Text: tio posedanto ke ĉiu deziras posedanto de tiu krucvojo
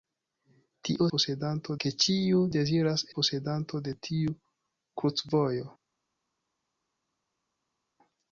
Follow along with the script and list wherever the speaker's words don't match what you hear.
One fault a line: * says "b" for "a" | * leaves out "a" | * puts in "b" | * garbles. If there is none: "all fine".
all fine